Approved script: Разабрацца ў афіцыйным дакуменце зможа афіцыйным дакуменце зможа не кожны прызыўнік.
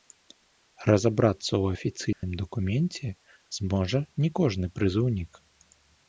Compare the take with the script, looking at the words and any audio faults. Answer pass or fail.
fail